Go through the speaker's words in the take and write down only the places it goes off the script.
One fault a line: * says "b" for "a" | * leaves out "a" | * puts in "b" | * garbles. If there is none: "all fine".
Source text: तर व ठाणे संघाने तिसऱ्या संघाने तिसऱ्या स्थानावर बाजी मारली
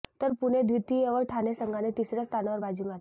* puts in "पुणे द्वितीय"
* leaves out "संघाने तिसऱ्या"